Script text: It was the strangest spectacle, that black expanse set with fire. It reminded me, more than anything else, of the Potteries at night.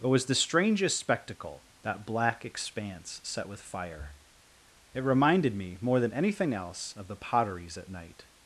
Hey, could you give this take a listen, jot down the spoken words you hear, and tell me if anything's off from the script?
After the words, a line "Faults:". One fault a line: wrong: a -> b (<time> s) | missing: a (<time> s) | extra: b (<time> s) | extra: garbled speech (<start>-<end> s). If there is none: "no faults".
It was the strangest spectacle, that black expanse set with fire. It reminded me, more than anything else, of the Potteries at night.
Faults:
no faults